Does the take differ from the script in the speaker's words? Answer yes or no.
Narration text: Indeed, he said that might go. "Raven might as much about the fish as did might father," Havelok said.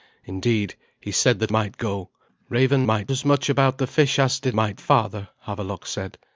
no